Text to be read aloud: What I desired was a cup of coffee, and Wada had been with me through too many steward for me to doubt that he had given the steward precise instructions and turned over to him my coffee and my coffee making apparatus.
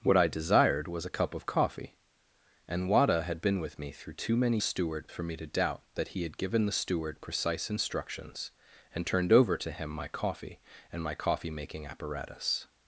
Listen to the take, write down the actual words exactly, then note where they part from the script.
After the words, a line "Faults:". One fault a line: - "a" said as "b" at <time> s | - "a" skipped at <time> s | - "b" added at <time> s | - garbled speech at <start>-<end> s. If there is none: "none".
What I desired was a cup of coffee, and Wada had been with me through too many steward for me to doubt that he had given the steward precise instructions and turned over to him my coffee and my coffee making apparatus.
Faults:
none